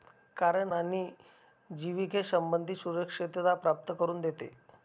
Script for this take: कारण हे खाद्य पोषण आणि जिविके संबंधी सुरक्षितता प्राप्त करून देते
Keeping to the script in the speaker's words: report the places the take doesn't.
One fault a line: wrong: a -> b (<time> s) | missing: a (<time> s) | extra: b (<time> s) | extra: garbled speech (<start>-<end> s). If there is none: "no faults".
missing: हे खाद्य पोषण (0.7 s)